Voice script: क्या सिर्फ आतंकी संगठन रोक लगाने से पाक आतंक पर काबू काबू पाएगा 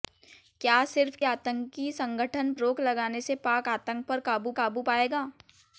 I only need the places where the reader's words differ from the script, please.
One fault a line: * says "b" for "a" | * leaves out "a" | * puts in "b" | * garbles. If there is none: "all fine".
all fine